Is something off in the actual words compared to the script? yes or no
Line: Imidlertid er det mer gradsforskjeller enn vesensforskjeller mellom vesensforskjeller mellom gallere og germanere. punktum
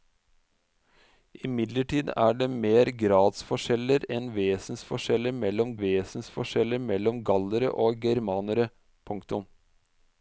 no